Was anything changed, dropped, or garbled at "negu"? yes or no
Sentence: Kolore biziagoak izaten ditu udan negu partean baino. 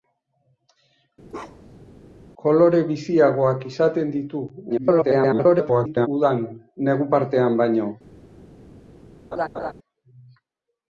no